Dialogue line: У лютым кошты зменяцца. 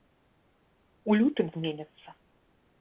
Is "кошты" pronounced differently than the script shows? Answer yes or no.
yes